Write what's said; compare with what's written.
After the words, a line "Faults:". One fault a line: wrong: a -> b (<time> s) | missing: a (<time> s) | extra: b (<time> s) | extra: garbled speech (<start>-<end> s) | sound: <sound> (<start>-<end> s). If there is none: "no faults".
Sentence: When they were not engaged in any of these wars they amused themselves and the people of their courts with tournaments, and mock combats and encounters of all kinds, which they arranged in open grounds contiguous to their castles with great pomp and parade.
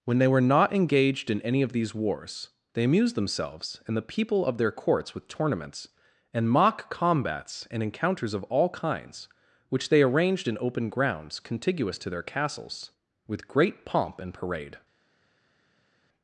When they were not engaged in any of these wars they amused themselves and the people of their courts with tournaments, and mock combats and encounters of all kinds, which they arranged in open grounds contiguous to their castles with great pomp and parade.
Faults:
no faults